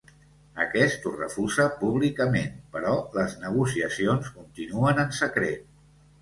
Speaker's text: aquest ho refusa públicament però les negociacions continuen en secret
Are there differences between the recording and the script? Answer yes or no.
no